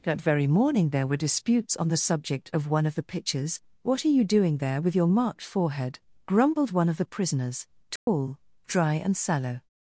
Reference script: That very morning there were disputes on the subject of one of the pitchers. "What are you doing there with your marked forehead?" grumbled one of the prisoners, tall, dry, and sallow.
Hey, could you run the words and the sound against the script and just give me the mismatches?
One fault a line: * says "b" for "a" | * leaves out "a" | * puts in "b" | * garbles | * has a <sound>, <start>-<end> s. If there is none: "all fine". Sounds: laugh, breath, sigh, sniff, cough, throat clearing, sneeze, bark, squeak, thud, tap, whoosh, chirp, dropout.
* says "pictures" for "pitchers"
* has a dropout, 8.0-8.1 s